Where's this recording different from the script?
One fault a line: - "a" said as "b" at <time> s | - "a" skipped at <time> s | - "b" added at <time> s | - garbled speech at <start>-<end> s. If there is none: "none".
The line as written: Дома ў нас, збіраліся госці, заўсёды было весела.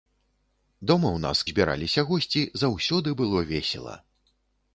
none